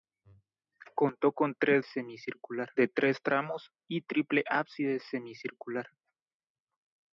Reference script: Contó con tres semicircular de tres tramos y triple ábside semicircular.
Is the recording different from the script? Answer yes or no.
no